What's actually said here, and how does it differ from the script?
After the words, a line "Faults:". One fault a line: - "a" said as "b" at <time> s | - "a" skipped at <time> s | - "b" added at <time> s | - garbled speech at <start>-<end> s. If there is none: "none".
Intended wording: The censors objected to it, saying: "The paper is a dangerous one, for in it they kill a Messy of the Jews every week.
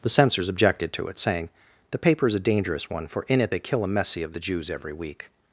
The censors objected to it, saying: "The paper is a dangerous one, for in it they kill a Messy of the Jews every week.
Faults:
none